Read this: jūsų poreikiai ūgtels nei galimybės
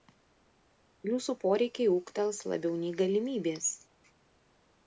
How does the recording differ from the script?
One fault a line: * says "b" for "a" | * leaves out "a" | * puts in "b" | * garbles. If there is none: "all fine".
* puts in "labiau"